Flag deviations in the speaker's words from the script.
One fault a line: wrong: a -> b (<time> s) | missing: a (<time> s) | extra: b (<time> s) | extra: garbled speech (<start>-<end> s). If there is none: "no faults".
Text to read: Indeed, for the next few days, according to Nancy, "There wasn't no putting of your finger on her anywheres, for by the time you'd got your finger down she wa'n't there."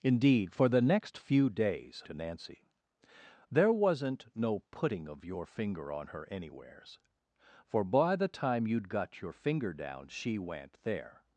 missing: according (2.0 s)